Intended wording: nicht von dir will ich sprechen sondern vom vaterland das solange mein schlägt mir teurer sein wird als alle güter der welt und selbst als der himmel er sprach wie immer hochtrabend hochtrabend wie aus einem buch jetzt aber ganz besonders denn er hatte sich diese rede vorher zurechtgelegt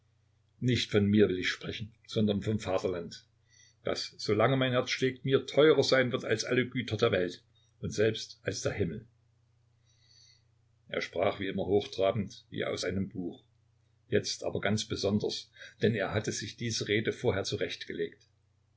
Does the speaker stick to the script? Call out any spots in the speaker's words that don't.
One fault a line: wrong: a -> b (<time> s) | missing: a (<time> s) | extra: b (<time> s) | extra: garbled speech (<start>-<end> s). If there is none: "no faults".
wrong: dir -> mir (1.1 s)
extra: herz (4.7 s)
missing: hochtrabend (12.4 s)